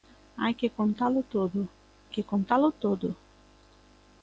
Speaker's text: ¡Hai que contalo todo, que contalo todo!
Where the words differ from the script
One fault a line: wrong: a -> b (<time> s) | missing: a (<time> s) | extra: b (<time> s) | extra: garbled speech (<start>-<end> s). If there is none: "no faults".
no faults